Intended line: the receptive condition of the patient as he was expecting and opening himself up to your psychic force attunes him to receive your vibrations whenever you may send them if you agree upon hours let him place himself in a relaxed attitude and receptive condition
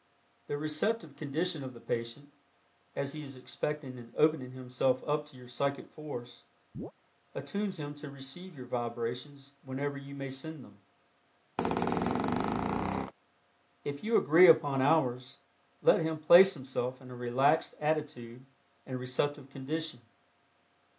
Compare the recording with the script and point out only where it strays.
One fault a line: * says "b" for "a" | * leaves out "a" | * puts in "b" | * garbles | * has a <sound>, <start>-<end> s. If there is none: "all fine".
* says "is" for "was"
* has a chirp, 6.7-6.9 s
* has a squeak, 11.6-13.1 s